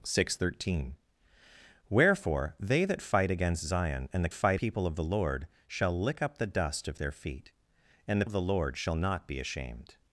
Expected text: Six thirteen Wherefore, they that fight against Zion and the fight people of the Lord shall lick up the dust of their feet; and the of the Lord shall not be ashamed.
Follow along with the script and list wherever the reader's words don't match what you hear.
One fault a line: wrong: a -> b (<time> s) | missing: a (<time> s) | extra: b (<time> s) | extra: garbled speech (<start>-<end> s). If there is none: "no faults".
no faults